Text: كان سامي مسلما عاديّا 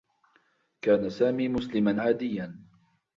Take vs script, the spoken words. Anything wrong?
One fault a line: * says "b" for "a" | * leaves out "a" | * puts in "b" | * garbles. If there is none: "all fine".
all fine